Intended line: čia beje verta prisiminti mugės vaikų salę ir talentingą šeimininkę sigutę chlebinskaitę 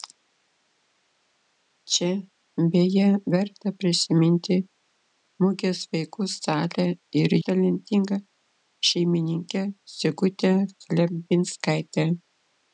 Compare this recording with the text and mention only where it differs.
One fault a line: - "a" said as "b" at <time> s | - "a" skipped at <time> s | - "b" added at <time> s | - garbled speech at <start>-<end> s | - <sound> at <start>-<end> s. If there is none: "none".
none